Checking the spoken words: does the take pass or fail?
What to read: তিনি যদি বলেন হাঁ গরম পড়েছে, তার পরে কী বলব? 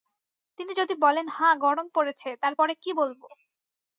pass